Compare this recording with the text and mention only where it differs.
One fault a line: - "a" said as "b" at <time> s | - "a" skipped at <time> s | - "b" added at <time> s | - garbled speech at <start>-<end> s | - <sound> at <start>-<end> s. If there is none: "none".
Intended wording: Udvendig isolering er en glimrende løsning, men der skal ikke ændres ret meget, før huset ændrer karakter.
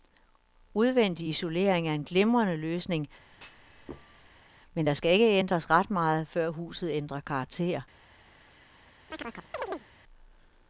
- thud at 3.3-4.5 s
- chirp at 9.1-9.9 s